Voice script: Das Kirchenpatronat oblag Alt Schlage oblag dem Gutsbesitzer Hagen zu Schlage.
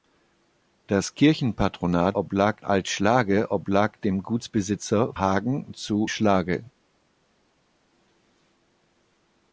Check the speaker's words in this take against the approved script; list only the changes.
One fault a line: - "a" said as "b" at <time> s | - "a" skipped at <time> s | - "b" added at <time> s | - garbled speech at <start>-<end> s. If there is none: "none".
none